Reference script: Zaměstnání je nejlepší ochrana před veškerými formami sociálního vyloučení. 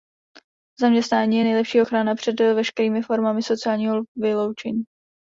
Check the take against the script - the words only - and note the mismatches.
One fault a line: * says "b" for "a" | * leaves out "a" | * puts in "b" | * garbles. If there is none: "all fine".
all fine